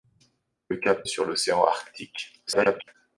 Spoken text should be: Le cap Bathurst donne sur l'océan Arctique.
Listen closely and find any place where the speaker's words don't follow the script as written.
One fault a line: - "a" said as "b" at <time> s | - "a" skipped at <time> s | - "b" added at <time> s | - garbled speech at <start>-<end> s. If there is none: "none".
- "Bathurst donne" skipped at 1.1 s
- garbled speech at 2.5-3.0 s